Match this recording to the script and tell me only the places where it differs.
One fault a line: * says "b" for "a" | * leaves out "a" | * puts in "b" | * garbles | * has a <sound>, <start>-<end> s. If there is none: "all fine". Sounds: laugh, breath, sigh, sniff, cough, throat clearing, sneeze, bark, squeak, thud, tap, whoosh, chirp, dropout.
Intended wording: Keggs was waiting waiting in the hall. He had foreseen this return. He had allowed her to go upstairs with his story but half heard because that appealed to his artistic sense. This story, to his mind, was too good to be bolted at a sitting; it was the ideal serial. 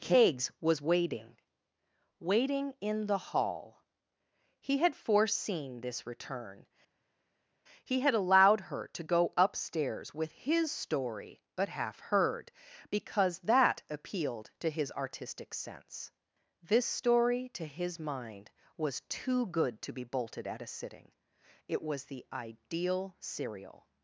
all fine